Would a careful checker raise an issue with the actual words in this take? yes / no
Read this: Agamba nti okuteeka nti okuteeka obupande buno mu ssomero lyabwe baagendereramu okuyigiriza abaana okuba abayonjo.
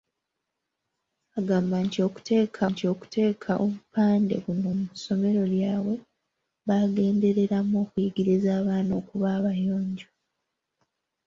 no